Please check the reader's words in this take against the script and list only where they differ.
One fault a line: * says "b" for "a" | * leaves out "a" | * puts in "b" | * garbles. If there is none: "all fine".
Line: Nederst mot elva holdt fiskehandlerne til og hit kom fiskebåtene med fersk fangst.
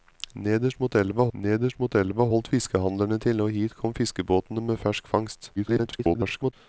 * puts in "nederst mot elva"
* garbles